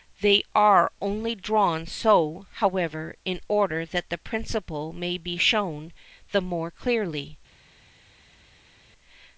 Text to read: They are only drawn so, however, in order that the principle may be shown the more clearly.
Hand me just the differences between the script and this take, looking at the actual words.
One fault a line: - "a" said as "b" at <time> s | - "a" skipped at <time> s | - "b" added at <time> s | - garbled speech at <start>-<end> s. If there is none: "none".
none